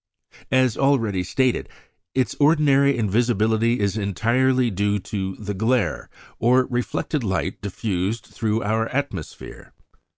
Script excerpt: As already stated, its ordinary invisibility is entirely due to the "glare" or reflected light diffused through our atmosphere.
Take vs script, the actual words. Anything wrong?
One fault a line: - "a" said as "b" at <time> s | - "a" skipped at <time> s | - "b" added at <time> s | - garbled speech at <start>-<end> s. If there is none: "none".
none